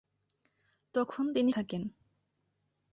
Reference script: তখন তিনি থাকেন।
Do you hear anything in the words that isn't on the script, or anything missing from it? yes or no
no